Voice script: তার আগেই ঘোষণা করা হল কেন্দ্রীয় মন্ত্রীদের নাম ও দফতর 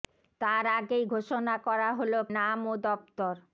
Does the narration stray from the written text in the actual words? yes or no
yes